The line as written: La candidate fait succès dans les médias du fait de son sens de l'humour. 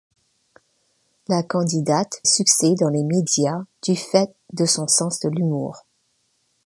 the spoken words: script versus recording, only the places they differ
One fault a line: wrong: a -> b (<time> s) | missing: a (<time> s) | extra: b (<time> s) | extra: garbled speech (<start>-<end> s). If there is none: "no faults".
missing: fait (2.2 s)